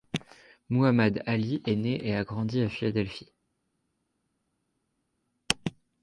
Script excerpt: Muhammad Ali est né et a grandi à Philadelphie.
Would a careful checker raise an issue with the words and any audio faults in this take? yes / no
no